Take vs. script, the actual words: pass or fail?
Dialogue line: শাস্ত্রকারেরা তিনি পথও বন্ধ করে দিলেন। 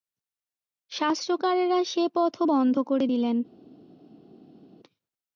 fail